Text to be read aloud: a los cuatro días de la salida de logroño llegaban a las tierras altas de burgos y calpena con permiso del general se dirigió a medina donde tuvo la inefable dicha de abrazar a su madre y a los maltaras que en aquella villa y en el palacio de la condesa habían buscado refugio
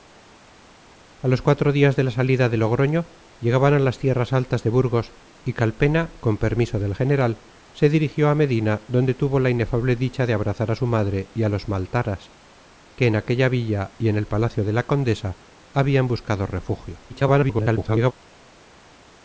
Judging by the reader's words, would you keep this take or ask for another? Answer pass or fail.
fail